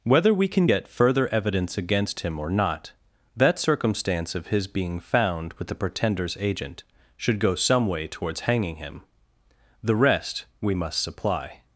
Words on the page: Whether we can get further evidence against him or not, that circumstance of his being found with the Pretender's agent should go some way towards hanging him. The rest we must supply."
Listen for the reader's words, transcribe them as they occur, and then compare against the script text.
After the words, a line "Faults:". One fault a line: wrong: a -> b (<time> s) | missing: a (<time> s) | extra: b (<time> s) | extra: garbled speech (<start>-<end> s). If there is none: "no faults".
Whether we can get further evidence against him or not, that circumstance of his being found with the Pretender's agent should go some way towards hanging him. The rest we must supply."
Faults:
no faults